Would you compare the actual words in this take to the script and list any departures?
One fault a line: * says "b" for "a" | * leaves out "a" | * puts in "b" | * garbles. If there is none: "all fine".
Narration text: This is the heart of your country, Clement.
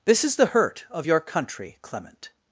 * says "hurt" for "heart"